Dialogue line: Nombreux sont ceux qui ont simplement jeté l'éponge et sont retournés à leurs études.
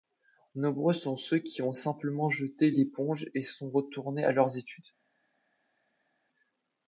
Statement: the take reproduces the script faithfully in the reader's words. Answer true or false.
true